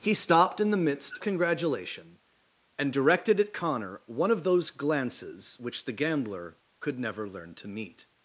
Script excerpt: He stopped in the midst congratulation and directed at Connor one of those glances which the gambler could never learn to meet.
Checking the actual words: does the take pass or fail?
pass